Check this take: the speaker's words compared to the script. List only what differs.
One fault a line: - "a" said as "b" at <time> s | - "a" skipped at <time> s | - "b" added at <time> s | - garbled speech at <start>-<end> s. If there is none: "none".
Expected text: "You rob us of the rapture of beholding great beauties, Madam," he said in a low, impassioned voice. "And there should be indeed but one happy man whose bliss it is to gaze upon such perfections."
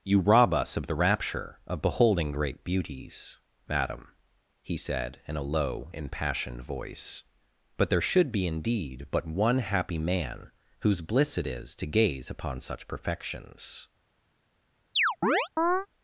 - "And" said as "But" at 7.8 s